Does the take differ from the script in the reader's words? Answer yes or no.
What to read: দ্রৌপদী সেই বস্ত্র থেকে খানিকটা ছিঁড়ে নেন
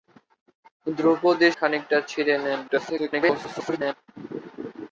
yes